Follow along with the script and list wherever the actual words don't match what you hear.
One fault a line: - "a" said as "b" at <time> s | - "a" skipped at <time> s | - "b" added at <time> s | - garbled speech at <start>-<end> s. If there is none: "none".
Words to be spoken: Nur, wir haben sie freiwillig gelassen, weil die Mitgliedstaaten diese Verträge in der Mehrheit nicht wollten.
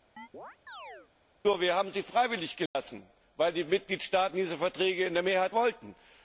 - "nicht" skipped at 5.5 s